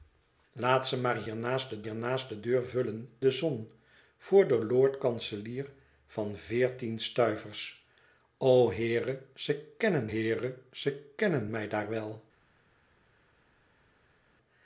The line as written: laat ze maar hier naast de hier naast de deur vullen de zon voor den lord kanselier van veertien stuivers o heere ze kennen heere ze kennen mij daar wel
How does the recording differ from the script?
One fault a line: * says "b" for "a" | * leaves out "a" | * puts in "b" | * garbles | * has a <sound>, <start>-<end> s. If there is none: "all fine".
all fine